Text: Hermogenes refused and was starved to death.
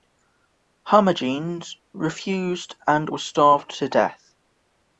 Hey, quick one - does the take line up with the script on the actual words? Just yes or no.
yes